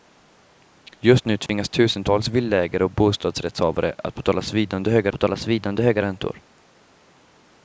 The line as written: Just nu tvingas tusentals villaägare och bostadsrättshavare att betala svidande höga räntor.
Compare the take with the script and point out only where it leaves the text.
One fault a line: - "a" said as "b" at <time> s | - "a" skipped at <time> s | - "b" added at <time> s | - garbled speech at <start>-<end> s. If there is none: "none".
- "betala svidande höga" added at 5.1 s